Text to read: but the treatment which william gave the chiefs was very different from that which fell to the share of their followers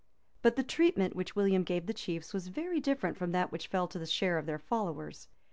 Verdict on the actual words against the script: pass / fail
pass